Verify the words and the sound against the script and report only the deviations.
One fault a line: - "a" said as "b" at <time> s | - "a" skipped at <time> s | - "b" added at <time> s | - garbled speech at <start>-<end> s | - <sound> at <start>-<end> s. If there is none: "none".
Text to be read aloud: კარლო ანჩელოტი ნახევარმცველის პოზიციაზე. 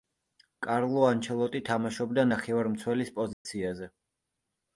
- "თამაშობდა" added at 1.7 s
- dropout at 3.3-3.5 s